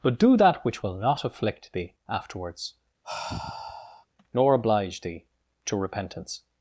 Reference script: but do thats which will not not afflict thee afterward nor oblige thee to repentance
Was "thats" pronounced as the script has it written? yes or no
no